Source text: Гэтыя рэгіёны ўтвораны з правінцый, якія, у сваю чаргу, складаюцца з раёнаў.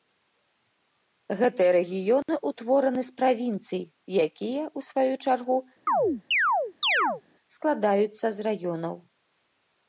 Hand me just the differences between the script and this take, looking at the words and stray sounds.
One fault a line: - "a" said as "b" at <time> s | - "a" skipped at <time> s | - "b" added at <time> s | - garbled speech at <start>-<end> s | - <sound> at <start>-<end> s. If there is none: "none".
- dropout at 2.2-2.3 s
- chirp at 5.9-7.2 s